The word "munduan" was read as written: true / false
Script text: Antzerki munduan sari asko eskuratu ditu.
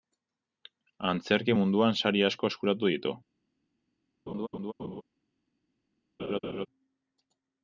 true